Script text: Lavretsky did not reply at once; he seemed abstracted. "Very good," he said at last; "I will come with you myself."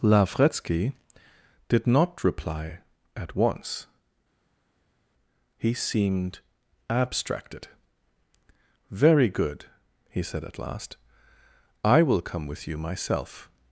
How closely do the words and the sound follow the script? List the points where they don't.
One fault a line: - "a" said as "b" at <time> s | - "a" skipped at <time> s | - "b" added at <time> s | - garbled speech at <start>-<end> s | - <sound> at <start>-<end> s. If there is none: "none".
none